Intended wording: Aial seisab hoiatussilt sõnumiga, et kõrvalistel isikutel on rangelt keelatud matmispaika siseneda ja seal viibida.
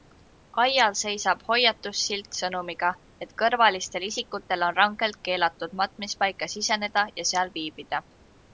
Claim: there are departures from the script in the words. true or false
false